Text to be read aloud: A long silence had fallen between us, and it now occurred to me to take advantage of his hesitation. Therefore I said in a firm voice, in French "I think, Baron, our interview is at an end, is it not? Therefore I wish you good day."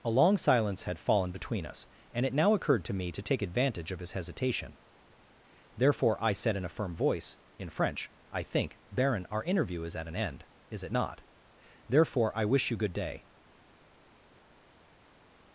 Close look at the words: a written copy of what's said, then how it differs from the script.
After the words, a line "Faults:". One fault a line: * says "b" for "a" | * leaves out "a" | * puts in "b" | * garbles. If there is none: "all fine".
A long silence had fallen between us, and it now occurred to me to take advantage of his hesitation. Therefore I said in a firm voice, in French "I think, Baron, our interview is at an end, is it not? Therefore I wish you good day."
Faults:
all fine